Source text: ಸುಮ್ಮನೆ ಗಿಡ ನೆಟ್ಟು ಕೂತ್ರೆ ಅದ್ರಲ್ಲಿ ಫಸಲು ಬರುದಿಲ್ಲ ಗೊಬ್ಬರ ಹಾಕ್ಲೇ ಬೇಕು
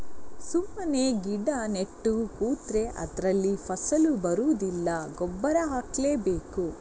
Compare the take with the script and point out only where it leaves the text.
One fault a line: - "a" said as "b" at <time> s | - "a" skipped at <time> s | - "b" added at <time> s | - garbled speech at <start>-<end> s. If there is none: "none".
none